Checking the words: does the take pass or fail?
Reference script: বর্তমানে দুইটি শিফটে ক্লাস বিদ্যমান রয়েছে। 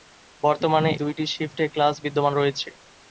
pass